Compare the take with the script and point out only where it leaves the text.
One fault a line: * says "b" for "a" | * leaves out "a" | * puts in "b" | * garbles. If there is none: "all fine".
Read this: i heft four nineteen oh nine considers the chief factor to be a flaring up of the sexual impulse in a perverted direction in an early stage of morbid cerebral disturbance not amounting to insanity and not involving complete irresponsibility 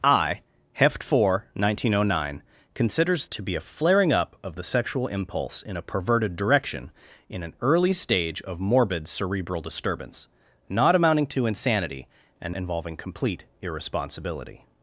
* leaves out "the chief factor"
* leaves out "not"